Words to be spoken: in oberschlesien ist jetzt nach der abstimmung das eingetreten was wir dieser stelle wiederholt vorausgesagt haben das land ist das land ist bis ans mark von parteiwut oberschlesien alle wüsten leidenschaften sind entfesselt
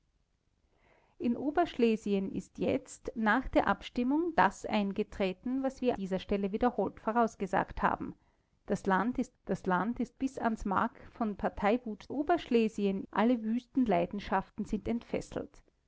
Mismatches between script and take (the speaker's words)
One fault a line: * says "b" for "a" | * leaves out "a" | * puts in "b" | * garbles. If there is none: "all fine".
all fine